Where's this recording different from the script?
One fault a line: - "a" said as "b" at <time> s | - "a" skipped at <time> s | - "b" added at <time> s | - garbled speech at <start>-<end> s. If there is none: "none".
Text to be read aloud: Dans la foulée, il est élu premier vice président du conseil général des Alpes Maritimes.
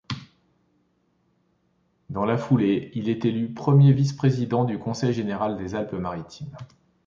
none